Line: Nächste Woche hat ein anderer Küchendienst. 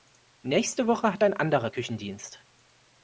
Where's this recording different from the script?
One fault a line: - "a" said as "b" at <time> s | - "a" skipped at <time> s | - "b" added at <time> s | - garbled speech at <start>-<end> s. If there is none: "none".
none